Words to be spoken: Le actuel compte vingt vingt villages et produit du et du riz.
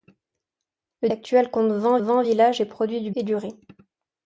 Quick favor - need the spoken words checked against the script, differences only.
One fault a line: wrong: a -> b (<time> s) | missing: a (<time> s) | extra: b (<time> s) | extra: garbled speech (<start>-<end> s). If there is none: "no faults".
no faults